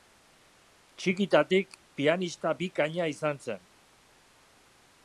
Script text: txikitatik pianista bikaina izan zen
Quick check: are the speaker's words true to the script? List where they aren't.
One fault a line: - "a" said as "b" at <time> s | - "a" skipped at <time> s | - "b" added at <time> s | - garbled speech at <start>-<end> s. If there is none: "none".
none